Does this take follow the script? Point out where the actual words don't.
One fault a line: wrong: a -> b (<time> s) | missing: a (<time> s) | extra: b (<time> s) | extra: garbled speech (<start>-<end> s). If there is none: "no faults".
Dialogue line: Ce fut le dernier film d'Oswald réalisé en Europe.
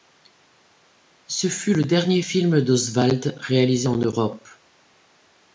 no faults